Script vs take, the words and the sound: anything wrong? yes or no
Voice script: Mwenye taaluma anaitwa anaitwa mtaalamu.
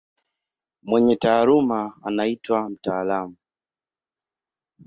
yes